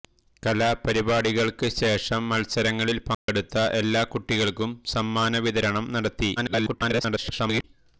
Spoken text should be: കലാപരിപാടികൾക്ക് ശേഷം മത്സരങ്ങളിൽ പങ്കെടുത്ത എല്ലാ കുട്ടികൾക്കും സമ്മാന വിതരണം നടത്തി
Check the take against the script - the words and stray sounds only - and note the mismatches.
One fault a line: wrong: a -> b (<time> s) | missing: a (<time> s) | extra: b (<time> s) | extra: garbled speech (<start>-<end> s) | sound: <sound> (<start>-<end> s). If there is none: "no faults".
sound: dropout (3.1-3.3 s)
extra: garbled speech (6.4-7.6 s)